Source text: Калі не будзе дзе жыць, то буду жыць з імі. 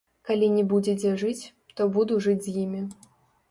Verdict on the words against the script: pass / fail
pass